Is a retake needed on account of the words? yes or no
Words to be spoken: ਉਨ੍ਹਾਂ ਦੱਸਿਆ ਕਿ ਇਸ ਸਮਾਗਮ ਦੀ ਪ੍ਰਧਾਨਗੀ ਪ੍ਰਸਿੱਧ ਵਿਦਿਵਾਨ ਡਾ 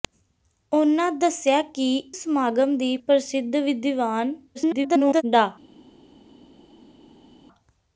yes